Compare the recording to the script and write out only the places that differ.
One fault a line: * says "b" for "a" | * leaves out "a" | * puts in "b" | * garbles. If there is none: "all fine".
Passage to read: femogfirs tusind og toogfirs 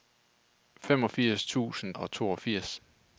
all fine